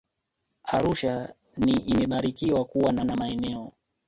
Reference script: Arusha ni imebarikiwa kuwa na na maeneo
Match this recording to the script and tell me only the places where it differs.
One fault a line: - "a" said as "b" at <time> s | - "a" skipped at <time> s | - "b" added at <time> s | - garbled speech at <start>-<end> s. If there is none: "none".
none